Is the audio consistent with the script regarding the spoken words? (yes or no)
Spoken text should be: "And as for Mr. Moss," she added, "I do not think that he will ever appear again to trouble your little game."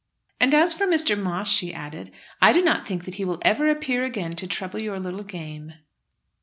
yes